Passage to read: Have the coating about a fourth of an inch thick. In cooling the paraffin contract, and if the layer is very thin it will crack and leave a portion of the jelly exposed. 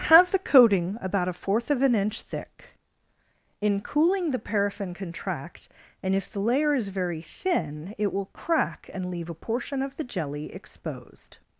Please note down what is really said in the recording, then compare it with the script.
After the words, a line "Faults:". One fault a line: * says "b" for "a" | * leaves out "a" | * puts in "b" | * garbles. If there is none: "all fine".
Have the coating about a fourth of an inch thick. In cooling the paraffin contract, and if the layer is very thin it will crack and leave a portion of the jelly exposed.
Faults:
all fine